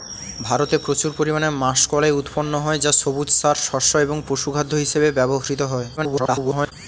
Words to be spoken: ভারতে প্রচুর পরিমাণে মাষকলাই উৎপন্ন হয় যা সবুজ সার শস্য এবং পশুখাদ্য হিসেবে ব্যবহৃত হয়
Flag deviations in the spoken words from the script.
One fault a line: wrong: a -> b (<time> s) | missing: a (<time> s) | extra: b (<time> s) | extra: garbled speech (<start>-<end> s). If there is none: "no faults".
extra: garbled speech (6.0-6.7 s)